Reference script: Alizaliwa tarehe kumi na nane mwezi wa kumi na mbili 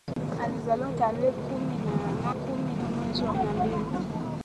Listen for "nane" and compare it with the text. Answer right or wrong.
wrong